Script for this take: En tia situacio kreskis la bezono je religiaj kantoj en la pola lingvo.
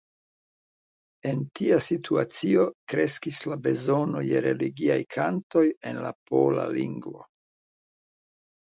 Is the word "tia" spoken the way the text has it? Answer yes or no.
yes